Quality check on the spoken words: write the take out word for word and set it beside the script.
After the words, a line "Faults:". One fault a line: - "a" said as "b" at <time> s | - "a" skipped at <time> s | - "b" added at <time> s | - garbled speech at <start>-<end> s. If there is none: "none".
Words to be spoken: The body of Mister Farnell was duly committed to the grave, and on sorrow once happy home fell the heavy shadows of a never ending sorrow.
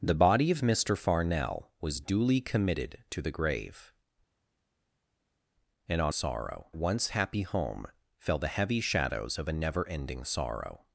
The body of Mister Farnell was duly committed to the grave, and on sorrow once happy home fell the heavy shadows of a never ending sorrow.
Faults:
none